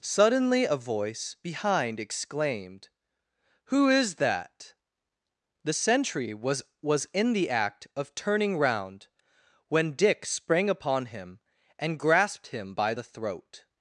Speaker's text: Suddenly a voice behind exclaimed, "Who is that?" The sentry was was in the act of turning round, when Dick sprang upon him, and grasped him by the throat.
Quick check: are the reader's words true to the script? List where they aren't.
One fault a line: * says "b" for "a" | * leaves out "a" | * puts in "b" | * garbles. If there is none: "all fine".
all fine